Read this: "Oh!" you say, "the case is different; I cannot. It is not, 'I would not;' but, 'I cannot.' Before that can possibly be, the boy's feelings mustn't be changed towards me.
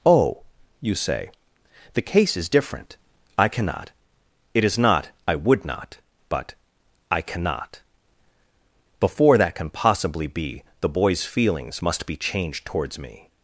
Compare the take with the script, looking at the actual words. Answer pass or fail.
fail